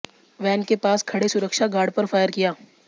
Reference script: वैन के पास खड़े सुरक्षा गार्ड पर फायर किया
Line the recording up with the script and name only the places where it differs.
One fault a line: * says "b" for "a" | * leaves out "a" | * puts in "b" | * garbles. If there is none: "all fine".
all fine